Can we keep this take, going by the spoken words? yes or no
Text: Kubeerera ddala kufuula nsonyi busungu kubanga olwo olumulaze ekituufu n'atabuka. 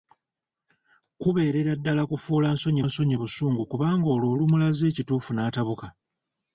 no